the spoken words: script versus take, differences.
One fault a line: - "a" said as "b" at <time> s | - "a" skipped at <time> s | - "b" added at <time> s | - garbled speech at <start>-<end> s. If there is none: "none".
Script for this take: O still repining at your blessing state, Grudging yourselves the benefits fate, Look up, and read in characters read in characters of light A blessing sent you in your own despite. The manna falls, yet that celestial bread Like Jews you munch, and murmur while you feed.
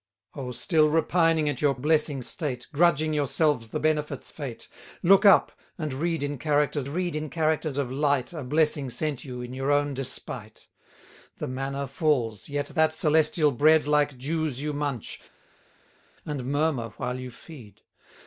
none